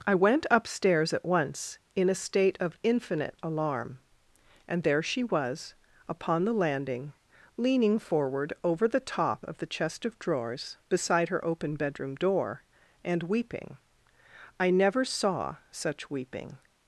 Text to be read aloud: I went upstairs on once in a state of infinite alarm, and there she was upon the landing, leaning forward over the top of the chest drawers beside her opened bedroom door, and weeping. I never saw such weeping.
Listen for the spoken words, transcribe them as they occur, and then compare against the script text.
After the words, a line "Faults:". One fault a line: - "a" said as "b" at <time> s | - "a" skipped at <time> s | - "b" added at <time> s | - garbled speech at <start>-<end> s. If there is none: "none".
I went upstairs at once in a state of infinite alarm, and there she was upon the landing, leaning forward over the top of the chest of drawers beside her open bedroom door, and weeping. I never saw such weeping.
Faults:
- "on" said as "at" at 1.1 s
- "of" added at 10.0 s
- "opened" said as "open" at 11.4 s